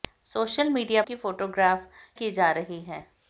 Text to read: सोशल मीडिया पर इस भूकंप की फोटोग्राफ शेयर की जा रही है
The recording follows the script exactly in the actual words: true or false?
false